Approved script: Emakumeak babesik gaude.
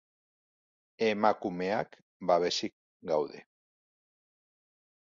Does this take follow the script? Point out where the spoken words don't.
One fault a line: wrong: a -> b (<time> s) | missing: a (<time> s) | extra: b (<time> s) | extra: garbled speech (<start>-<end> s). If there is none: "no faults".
no faults